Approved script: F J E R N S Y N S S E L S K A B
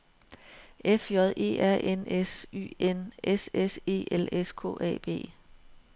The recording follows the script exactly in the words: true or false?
true